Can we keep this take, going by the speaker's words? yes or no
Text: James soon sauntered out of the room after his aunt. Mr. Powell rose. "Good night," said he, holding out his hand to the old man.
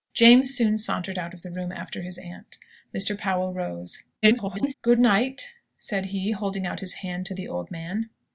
no